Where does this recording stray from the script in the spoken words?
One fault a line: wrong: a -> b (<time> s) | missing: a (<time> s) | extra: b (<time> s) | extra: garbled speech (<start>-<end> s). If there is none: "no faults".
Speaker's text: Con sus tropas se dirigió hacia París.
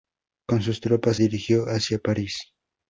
missing: se (1.2 s)